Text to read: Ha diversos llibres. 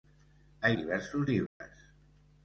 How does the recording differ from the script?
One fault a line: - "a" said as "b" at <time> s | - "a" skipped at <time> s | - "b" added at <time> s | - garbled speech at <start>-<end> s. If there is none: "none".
none